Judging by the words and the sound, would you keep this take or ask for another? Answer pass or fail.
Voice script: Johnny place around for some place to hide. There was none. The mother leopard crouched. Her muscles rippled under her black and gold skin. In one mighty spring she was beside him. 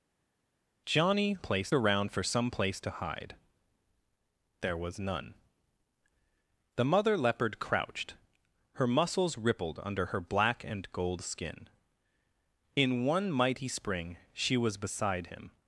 pass